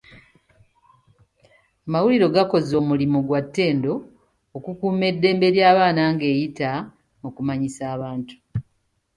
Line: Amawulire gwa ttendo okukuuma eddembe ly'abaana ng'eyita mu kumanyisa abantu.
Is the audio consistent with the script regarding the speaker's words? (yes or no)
no